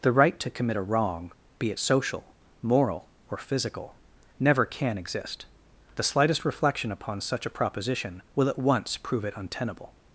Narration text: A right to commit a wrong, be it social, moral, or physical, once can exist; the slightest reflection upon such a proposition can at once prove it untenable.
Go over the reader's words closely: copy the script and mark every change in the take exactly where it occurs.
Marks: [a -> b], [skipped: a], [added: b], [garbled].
[A -> The] right to commit a wrong, be it social, moral, or physical, [once -> never] can exist; the slightest reflection upon such a proposition [can -> will] at once prove it untenable.